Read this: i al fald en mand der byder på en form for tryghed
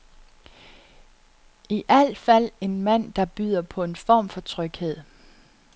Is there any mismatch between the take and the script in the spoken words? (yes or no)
no